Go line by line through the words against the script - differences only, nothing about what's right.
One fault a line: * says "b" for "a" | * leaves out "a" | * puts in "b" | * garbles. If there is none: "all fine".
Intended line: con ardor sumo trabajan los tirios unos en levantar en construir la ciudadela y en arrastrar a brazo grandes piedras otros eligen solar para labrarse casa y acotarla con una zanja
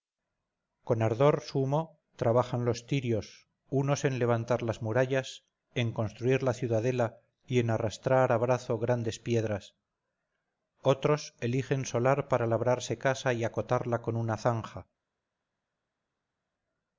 * puts in "las murallas"